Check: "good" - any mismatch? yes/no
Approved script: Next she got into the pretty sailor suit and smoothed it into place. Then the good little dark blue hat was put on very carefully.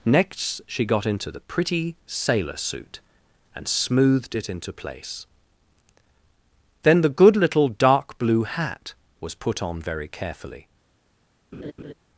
no